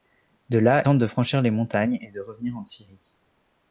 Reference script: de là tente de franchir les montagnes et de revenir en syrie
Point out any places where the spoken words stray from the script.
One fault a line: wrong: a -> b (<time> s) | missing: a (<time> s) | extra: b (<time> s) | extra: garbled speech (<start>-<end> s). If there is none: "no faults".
no faults